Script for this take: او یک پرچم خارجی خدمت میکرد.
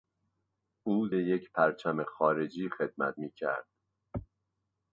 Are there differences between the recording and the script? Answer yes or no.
no